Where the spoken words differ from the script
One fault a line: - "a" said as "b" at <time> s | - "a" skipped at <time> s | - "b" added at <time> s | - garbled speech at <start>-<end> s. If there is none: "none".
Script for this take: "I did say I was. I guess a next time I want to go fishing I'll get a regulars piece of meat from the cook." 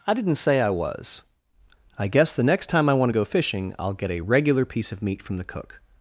- "did" said as "didn't" at 0.1 s
- "a" said as "the" at 2.3 s
- "regulars" said as "regular" at 4.2 s